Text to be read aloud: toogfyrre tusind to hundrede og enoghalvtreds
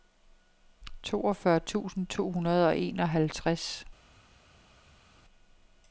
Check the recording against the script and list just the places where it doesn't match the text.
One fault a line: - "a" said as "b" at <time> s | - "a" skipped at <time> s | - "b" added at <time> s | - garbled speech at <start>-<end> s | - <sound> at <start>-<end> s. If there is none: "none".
none